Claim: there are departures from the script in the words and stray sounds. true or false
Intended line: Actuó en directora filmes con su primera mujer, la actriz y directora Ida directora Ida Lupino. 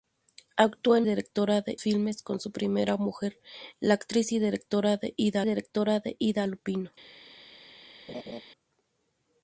true